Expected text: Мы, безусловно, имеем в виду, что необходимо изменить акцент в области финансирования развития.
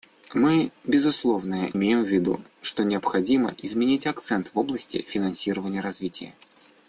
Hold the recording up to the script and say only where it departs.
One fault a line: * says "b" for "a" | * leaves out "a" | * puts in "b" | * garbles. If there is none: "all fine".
all fine